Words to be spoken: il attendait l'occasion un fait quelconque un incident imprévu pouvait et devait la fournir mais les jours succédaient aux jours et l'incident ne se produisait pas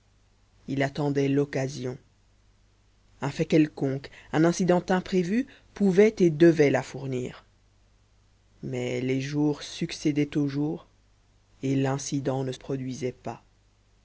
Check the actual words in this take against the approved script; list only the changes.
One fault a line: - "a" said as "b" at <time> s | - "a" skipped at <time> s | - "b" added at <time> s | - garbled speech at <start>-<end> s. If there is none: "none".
- "se" skipped at 12.5 s